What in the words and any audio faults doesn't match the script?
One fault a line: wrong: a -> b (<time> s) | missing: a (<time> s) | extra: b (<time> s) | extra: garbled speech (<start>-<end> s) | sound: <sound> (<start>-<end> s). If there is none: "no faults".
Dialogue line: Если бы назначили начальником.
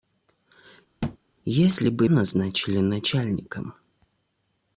sound: thud (1.0-1.2 s)